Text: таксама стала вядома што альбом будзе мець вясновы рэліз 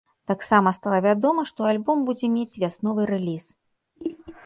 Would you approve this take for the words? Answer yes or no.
yes